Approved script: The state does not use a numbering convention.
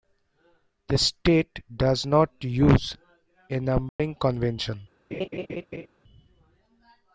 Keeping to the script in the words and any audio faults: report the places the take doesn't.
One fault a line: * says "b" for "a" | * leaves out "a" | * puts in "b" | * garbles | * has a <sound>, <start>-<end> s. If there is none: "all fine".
* has a dropout, 3.9-4.0 s
* has a laugh, 5.1-5.9 s